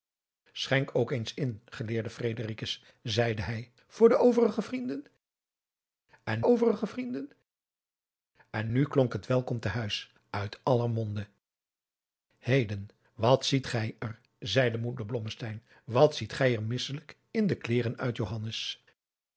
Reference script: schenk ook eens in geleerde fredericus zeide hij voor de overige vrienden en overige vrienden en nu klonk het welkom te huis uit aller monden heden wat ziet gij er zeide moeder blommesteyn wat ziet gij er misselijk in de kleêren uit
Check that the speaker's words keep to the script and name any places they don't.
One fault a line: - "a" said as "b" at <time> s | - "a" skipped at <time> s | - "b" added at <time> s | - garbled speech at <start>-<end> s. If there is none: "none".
none